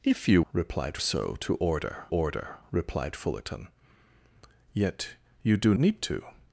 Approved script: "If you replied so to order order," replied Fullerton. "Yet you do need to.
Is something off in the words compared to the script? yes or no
no